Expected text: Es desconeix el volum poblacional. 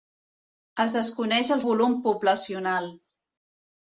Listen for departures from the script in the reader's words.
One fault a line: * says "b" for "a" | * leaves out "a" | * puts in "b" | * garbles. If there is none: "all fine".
all fine